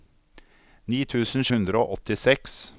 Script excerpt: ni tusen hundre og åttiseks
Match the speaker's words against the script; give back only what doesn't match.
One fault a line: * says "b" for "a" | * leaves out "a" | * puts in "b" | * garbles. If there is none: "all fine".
all fine